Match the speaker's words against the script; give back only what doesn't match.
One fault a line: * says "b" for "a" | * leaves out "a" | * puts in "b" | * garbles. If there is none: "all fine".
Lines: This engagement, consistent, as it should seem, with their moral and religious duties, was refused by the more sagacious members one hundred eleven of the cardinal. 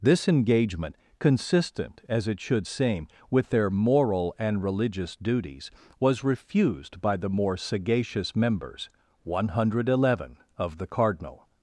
all fine